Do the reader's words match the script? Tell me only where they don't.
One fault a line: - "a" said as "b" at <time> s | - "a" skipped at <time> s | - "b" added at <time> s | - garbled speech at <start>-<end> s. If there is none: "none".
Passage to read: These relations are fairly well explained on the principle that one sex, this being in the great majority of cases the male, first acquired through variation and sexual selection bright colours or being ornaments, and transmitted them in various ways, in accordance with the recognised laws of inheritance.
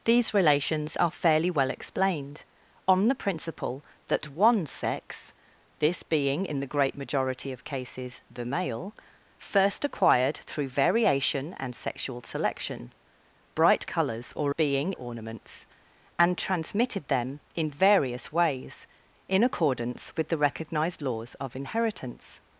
none